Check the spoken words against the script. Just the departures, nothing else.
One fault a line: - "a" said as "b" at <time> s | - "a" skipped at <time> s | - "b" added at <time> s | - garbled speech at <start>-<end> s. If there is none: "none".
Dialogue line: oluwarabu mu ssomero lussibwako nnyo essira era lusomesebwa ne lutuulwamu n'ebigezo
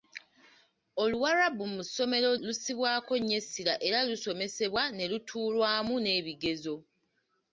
none